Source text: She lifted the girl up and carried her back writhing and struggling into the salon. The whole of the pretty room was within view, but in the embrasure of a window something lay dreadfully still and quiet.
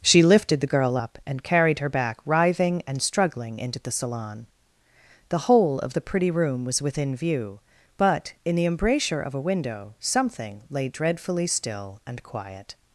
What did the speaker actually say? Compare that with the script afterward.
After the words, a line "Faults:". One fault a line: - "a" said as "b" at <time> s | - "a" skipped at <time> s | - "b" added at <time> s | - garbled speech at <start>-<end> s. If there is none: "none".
She lifted the girl up and carried her back writhing and struggling into the salon. The whole of the pretty room was within view, but in the embrasure of a window something lay dreadfully still and quiet.
Faults:
none